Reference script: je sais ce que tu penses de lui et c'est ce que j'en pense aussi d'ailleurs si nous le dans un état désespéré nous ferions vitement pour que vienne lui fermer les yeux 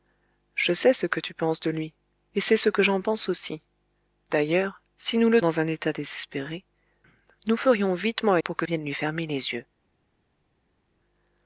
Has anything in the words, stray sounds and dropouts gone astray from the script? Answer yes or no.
no